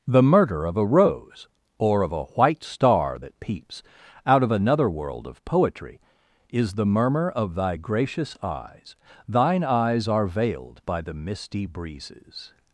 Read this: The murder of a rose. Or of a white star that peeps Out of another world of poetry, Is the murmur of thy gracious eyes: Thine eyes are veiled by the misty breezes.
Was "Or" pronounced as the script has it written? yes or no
yes